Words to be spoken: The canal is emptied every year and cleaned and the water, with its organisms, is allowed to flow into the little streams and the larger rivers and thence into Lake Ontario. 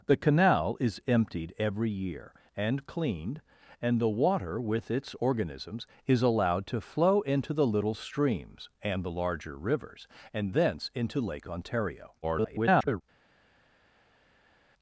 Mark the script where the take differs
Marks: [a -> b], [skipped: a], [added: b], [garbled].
The canal is emptied every year and cleaned and the water, with its organisms, is allowed to flow into the little streams and the larger rivers and thence into Lake Ontario. [garbled]